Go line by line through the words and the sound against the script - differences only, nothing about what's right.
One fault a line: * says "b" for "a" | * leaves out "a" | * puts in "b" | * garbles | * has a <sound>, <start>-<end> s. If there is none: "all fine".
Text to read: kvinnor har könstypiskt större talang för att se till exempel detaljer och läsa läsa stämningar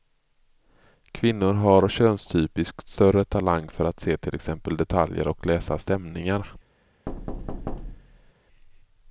* leaves out "läsa"
* has a thud, 7.1-8.3 s